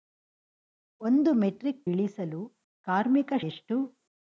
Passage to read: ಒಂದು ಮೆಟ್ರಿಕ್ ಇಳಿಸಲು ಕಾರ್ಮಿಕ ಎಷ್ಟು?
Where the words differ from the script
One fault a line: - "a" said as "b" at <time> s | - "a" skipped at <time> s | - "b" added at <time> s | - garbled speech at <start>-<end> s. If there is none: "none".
none